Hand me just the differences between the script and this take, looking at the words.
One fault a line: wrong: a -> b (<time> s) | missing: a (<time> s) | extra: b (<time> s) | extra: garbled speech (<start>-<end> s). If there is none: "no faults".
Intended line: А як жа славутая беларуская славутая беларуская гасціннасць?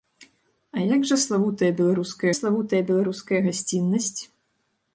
no faults